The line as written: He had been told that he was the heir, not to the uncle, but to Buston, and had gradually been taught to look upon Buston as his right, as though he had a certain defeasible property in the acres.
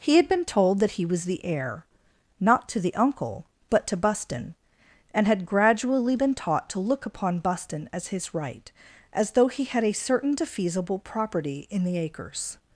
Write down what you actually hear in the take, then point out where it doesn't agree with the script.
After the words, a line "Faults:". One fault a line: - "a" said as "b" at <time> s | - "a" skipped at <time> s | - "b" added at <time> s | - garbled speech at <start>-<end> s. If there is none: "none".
He had been told that he was the heir, not to the uncle, but to Buston, and had gradually been taught to look upon Buston as his right, as though he had a certain defeasible property in the acres.
Faults:
none